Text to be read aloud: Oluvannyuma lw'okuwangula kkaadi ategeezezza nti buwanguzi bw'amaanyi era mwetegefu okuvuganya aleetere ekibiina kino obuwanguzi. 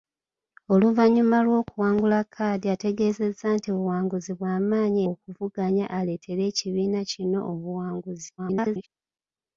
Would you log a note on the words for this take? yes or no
yes